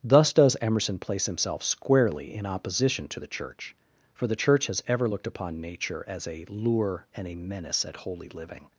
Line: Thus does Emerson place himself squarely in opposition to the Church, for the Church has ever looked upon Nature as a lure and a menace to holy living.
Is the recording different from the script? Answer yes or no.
yes